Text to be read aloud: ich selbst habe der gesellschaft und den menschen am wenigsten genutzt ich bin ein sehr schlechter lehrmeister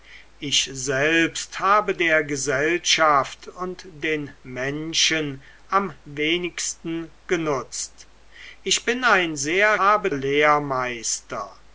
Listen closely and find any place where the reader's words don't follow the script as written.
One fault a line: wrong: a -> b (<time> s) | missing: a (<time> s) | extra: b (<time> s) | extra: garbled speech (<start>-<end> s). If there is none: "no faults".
wrong: schlechter -> habe (9.8 s)